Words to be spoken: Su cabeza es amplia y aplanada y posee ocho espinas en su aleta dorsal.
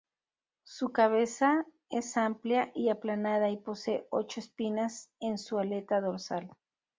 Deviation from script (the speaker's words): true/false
false